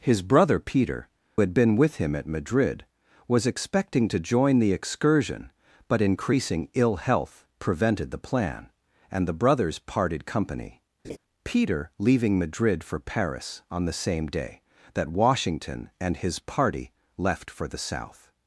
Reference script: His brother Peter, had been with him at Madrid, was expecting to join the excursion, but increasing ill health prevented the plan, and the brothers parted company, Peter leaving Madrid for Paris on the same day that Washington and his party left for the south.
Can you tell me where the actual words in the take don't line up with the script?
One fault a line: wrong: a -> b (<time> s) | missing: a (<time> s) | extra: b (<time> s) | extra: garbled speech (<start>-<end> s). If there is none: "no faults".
no faults